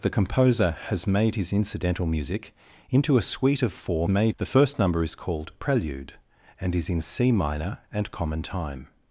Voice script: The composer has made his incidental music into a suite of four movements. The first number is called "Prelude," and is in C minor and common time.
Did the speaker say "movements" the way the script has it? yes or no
no